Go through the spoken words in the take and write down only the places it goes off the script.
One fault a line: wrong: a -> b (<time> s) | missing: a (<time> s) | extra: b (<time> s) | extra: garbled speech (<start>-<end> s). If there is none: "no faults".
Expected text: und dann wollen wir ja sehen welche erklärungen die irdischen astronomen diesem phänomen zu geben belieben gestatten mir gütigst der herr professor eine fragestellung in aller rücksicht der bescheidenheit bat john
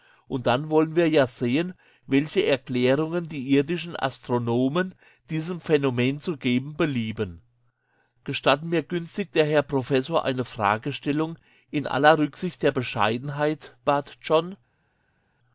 no faults